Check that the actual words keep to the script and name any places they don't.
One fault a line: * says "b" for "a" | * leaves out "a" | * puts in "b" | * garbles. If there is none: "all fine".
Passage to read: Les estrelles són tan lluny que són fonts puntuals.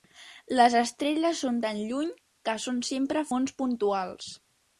* puts in "sempre"